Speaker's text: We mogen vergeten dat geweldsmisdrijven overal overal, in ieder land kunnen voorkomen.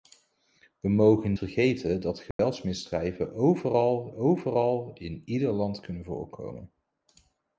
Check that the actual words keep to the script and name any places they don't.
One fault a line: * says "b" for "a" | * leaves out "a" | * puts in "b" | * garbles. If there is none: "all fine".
all fine